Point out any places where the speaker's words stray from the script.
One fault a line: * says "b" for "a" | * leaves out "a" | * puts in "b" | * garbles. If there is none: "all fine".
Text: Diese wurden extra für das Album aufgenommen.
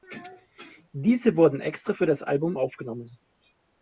all fine